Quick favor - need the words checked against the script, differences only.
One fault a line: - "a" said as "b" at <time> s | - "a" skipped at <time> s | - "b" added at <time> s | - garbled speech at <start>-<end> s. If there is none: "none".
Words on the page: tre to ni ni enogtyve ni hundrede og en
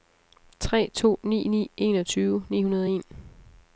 none